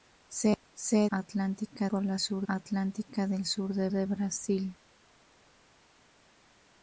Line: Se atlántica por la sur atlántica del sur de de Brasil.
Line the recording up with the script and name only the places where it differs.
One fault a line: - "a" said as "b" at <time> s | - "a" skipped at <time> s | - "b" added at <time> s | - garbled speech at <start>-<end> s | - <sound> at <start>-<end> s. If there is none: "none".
none